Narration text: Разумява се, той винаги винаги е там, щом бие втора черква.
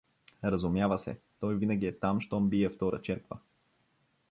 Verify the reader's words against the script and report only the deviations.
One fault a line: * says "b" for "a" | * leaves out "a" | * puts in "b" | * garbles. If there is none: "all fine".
* leaves out "винаги"